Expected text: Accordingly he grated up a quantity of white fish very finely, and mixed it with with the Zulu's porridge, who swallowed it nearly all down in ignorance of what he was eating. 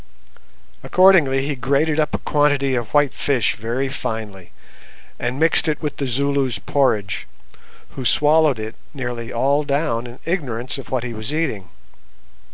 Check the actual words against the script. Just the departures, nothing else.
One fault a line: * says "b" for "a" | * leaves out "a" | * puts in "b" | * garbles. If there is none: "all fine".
* leaves out "with"